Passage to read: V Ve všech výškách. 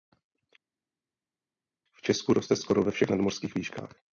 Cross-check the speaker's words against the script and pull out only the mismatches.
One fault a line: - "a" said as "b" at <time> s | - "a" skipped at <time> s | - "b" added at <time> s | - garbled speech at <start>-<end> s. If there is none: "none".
- "Česku roste skoro" added at 2.0 s
- "nadmořských" added at 3.1 s